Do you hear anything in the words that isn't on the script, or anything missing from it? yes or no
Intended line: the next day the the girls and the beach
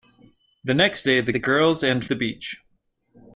no